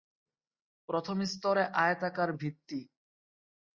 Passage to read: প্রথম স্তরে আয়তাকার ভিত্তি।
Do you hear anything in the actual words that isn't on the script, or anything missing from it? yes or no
no